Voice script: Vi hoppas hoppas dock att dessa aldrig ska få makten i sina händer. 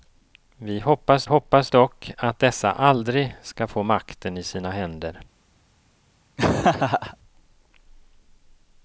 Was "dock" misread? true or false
false